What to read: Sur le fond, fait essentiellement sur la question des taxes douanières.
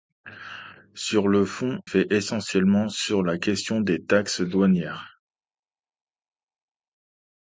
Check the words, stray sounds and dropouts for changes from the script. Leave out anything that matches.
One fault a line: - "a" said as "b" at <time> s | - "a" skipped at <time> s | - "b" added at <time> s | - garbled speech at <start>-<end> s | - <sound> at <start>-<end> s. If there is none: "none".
none